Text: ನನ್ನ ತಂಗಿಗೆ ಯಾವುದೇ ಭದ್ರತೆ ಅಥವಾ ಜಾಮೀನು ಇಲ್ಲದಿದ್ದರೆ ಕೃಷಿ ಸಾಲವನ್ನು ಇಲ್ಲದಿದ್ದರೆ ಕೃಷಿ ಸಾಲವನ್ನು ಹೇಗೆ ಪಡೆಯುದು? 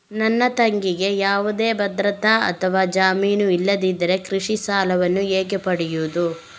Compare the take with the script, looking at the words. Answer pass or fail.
fail